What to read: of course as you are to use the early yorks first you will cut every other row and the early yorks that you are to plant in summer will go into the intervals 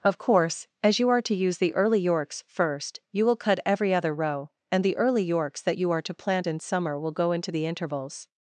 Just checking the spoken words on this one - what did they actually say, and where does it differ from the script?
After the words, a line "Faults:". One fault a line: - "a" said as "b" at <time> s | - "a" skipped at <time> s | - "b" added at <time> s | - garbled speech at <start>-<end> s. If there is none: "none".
of course as you are to use the early yorks first you will cut every other row and the early yorks that you are to plant in summer will go into the intervals
Faults:
none